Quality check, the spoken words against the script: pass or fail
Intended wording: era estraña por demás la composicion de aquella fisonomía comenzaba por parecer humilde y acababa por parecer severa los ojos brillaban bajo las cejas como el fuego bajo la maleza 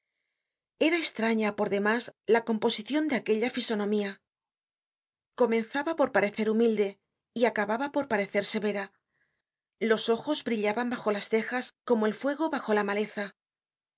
pass